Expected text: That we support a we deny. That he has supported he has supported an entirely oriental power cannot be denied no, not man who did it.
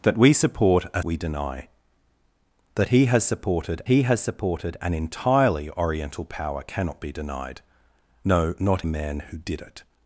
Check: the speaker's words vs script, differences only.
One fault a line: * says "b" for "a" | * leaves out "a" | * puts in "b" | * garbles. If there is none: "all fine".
all fine